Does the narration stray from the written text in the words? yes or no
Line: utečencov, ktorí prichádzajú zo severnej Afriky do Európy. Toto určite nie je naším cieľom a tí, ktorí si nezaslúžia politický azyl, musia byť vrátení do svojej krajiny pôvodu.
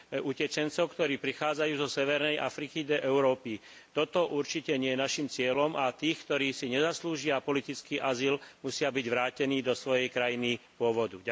no